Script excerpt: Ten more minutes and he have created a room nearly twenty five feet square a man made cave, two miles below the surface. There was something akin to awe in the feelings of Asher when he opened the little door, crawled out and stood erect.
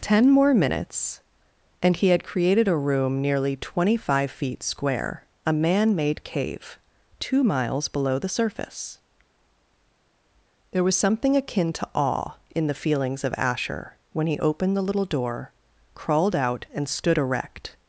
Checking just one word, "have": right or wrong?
wrong